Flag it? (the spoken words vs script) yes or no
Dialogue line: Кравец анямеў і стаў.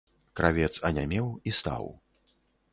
no